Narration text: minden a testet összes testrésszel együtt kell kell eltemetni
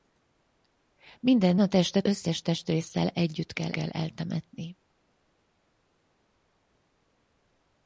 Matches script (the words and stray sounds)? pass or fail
pass